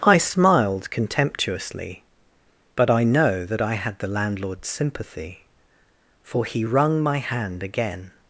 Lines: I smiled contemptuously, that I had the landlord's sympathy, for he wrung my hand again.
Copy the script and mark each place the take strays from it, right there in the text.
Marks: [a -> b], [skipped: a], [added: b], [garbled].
I smiled contemptuously, [added: but I know] that I had the landlord's sympathy, for he wrung my hand again.